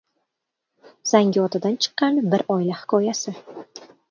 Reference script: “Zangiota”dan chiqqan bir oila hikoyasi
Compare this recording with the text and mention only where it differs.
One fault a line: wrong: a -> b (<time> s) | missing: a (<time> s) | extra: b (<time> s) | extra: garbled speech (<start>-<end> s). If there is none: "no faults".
no faults